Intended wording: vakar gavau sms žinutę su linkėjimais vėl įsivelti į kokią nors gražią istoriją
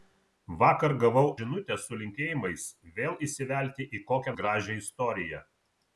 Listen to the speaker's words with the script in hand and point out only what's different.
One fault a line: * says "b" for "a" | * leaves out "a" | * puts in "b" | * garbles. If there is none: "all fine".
* leaves out "sms"
* leaves out "nors"